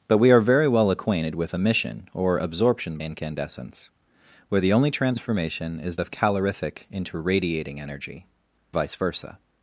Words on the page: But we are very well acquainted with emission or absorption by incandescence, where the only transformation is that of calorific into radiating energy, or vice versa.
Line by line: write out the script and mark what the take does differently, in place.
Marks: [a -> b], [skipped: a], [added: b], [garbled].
But we are very well acquainted with emission or absorption [skipped: by] incandescence, where the only transformation is [skipped: that] of calorific into radiating energy, [skipped: or] vice versa.